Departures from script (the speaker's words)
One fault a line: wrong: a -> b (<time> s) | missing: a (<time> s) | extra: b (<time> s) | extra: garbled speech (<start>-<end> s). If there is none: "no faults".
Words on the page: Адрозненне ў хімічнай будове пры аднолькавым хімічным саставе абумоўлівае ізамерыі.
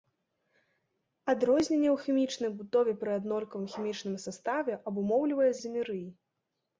no faults